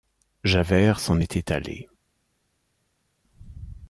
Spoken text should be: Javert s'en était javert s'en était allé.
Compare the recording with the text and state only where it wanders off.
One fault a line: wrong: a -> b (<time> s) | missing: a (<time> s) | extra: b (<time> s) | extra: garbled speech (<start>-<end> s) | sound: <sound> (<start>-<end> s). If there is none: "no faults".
missing: javert s'en était (1.5 s)